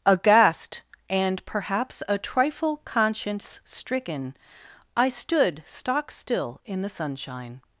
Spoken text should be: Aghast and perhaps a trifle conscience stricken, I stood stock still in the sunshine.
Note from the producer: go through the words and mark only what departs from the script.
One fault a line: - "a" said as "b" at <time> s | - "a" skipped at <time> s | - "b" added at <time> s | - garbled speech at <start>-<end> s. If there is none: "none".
none